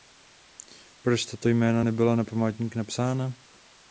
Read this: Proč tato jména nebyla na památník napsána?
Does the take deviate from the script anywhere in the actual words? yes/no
no